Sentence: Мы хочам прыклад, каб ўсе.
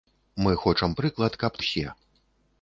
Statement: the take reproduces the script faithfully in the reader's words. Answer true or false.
true